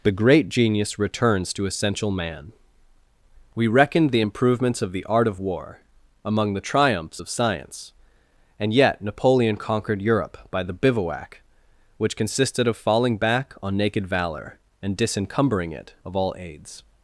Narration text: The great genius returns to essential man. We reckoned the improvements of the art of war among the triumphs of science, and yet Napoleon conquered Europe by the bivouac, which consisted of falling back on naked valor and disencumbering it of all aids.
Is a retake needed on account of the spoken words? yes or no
no